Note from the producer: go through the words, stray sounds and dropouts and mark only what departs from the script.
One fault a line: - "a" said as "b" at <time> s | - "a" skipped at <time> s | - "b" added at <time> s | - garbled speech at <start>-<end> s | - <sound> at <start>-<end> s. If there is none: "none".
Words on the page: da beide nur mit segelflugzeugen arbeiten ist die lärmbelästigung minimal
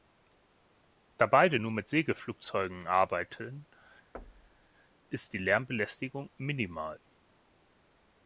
- thud at 4.1-4.7 s